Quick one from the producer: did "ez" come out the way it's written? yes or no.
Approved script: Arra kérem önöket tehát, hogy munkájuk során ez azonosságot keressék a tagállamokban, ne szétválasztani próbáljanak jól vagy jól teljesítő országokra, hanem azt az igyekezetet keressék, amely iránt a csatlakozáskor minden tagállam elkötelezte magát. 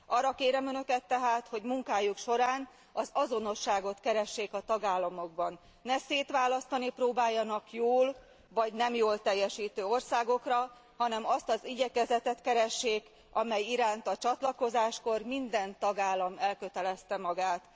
no